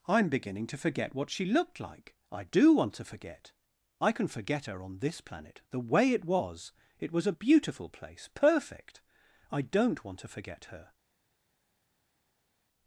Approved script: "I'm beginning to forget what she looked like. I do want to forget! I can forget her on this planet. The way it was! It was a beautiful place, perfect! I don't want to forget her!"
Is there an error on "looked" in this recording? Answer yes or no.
no